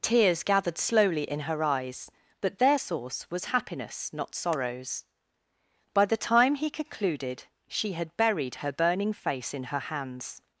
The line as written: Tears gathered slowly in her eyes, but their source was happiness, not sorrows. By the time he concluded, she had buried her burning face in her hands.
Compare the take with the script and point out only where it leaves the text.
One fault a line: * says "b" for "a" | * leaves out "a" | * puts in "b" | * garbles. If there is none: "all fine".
all fine